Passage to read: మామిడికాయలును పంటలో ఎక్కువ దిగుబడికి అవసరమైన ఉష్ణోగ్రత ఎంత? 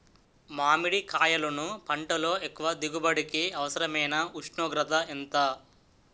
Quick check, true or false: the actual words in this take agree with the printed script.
true